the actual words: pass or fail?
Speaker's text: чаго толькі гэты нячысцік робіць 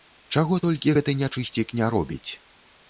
fail